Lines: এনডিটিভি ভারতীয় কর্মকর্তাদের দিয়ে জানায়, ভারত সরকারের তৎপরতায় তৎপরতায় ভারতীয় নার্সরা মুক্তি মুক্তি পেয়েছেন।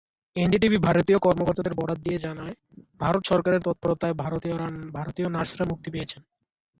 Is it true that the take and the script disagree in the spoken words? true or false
true